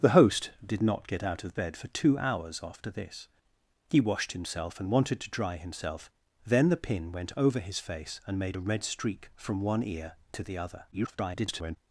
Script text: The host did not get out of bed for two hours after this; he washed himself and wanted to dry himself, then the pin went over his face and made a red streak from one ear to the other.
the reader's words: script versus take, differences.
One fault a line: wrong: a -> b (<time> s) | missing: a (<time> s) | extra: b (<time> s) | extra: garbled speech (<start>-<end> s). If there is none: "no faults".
extra: garbled speech (10.9-11.8 s)